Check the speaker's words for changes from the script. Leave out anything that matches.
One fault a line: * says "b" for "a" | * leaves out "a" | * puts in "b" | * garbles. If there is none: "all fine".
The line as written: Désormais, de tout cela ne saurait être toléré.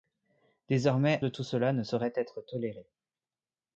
all fine